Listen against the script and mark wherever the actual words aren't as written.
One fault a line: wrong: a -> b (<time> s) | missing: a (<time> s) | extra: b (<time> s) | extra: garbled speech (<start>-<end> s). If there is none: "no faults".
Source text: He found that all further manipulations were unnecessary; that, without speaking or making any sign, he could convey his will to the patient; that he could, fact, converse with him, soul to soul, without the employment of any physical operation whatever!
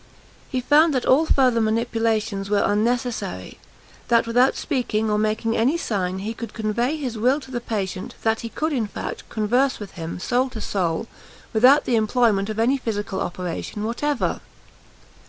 extra: in (8.7 s)